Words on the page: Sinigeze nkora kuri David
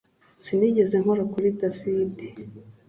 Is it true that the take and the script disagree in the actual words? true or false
false